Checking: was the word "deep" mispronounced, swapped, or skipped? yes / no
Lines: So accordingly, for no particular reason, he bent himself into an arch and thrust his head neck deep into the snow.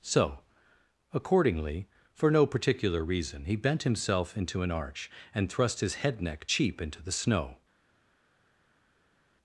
yes